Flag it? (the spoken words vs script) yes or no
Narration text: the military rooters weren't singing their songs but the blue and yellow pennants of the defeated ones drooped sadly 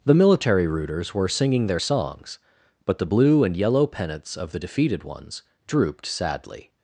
yes